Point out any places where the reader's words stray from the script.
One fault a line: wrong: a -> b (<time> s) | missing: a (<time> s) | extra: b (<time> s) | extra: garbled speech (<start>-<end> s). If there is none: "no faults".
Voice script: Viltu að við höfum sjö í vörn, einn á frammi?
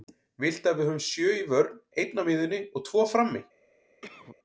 extra: miðjunni og tvo (2.2 s)